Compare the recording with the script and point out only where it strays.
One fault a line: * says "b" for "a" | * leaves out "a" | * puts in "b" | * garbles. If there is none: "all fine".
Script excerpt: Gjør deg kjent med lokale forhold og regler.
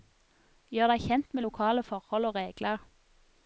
all fine